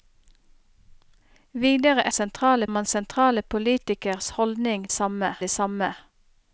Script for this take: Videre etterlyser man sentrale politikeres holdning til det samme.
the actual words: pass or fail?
fail